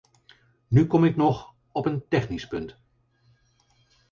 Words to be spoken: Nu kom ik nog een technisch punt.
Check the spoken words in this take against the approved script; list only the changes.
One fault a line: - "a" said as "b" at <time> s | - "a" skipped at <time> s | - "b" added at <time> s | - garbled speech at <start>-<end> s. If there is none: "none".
- "op" added at 1.7 s